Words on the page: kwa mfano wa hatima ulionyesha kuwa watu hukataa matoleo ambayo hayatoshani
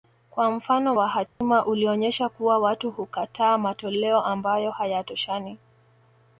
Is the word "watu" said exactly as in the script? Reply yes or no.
yes